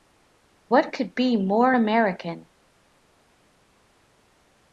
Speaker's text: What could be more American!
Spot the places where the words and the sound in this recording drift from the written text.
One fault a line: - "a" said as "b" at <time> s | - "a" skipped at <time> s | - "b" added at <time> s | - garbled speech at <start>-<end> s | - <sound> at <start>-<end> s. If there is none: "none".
none